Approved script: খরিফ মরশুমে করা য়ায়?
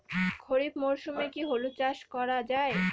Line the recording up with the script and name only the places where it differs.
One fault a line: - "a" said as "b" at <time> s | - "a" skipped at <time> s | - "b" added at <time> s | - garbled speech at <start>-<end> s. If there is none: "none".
- "কি হলুদ চাস" added at 1.3 s